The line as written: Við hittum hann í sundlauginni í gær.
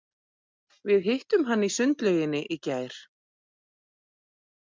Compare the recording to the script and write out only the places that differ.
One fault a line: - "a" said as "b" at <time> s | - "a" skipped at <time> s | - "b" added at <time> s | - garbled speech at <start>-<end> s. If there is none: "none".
none